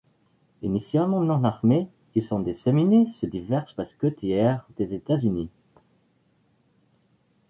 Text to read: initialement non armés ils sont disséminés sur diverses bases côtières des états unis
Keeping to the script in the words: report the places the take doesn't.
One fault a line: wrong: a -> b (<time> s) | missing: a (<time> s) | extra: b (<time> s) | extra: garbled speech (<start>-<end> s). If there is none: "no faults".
no faults